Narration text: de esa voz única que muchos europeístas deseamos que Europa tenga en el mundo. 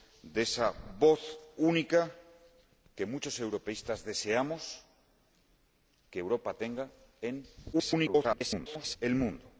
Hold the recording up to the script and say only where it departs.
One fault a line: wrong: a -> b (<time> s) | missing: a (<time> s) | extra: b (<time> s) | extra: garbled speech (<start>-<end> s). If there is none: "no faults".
extra: garbled speech (7.7-9.0 s)